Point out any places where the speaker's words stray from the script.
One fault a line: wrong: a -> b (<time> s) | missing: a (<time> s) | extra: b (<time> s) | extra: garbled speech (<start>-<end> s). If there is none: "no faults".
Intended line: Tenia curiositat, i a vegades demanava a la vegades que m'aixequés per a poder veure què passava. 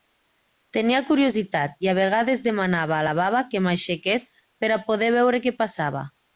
wrong: vegades -> baba (3.2 s)